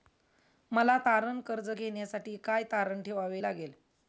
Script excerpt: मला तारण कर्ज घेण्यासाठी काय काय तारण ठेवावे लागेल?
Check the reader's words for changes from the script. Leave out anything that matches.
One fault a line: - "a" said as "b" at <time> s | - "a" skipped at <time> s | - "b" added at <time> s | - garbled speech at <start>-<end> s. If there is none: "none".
- "काय" skipped at 2.6 s